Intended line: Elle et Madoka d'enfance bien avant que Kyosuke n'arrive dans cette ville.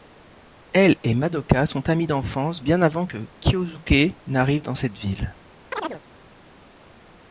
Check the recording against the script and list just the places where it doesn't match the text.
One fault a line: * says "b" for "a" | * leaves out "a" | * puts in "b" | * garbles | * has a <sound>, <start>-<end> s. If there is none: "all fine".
* puts in "sont amies"
* has a chirp, 5.7-6.0 s